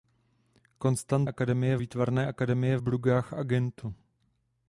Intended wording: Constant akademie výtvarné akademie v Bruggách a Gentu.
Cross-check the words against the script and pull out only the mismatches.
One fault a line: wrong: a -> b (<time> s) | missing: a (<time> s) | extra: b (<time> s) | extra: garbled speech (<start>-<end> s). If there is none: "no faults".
no faults